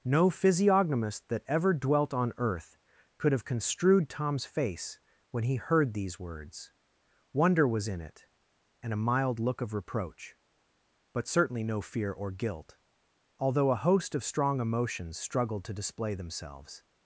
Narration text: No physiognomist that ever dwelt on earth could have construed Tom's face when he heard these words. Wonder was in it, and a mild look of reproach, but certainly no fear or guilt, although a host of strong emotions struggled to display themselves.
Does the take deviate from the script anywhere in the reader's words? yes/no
no